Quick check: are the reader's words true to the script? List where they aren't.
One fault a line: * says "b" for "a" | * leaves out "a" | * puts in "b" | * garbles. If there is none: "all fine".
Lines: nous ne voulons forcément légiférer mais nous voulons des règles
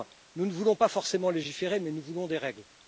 * puts in "pas"